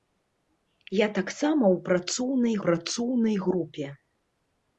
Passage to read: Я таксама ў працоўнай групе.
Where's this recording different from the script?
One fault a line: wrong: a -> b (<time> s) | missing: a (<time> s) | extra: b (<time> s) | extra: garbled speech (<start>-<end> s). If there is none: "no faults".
extra: працоўнай (2.7 s)